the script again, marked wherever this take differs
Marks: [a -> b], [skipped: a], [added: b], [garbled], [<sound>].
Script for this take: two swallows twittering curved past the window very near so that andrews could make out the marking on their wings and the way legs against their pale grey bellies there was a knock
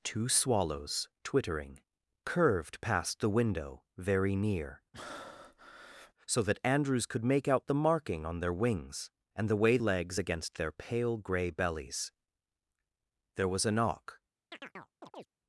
two swallows twittering curved past the window very near [breath] so that andrews could make out the marking on their wings and the way legs against their pale grey bellies there was a knock [chirp]